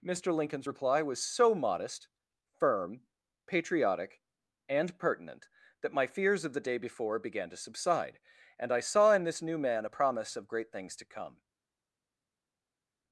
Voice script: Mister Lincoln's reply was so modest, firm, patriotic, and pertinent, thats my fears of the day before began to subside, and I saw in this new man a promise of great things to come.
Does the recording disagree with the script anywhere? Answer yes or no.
yes